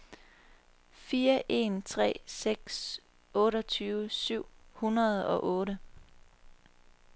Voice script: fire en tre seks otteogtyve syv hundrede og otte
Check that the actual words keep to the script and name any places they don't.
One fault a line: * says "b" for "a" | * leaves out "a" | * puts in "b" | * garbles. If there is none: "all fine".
all fine